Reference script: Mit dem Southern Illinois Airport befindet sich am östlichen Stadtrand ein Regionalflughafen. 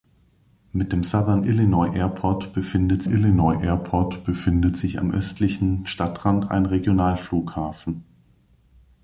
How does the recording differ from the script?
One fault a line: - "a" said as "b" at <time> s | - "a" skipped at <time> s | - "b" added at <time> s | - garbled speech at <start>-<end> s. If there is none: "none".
- "Illinois Airport befindet" added at 3.1 s